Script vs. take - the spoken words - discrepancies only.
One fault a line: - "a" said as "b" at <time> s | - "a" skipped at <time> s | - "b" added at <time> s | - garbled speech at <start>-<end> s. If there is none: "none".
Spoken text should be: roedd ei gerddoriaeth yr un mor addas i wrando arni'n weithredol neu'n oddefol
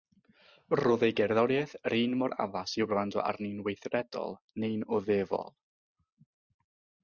none